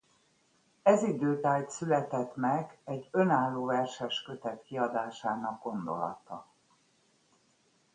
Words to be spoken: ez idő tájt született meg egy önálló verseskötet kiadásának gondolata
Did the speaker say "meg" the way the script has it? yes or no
yes